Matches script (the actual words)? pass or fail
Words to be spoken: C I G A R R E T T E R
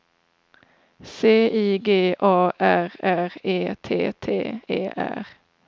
pass